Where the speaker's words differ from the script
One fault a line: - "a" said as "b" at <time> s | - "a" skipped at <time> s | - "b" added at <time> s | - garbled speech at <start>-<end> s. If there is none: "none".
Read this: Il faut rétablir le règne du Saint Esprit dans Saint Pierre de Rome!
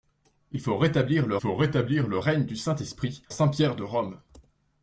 - "faut rétablir le" added at 1.4 s
- "dans" skipped at 3.2 s